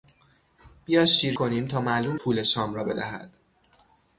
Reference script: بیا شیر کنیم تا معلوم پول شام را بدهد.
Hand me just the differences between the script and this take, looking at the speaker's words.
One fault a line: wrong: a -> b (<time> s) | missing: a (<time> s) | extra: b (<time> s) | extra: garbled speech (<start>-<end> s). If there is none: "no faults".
no faults